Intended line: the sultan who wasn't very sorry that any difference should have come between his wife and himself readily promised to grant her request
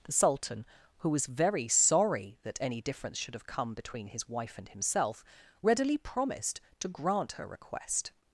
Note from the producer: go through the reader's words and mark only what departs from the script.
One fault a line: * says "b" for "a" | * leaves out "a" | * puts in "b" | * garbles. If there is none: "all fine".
* says "was" for "wasn't"